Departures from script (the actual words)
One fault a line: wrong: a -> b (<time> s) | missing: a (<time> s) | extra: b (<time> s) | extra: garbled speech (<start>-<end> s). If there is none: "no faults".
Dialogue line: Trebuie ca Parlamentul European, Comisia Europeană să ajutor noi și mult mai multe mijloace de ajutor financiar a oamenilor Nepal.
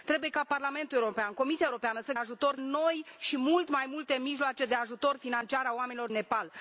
no faults